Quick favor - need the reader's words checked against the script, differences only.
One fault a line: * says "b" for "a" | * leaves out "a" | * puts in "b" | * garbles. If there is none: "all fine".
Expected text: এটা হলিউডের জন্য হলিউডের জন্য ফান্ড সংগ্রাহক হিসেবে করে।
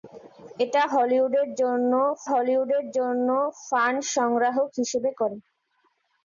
all fine